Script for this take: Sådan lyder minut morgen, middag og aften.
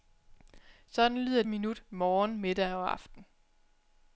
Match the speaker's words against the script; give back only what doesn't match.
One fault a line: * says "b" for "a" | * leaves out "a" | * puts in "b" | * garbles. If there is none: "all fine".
all fine